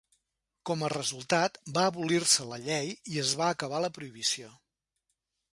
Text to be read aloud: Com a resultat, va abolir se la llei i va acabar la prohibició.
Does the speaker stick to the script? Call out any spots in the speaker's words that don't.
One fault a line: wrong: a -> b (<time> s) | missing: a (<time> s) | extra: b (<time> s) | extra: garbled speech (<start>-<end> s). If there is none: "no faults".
extra: es (3.2 s)